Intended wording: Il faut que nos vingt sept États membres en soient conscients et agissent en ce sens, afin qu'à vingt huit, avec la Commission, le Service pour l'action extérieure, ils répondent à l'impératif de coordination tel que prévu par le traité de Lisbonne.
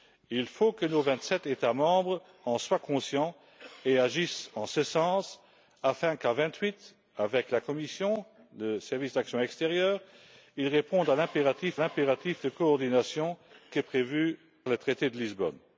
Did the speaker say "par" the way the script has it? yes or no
no